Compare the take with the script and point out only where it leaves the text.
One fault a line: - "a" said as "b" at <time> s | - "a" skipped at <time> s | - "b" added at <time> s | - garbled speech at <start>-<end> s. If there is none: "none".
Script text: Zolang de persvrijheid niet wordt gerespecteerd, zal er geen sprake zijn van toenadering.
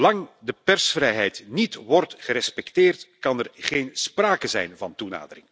- "zal" said as "kan" at 3.2 s